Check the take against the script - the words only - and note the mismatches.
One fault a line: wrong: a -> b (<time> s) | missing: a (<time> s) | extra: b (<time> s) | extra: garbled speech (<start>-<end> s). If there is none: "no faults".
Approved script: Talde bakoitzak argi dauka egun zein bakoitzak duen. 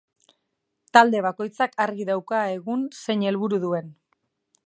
wrong: bakoitzak -> helburu (3.3 s)